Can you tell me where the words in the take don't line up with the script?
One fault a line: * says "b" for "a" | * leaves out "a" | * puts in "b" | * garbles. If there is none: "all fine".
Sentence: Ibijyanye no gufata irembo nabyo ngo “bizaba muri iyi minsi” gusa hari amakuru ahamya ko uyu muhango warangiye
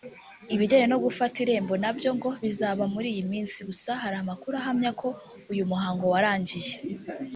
all fine